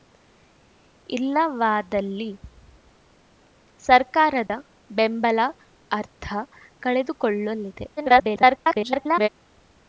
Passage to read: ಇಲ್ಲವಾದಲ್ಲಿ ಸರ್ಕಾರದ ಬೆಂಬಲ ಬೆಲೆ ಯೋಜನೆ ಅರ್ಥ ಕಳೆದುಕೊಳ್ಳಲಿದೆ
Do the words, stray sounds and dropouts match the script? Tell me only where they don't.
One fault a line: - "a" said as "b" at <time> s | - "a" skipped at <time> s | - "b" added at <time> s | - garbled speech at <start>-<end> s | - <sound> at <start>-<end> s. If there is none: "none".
- dropout at 4.5-4.5 s
- "ಬೆಲೆ ಯೋಜನೆ" skipped at 5.4 s
- garbled speech at 8.0-9.3 s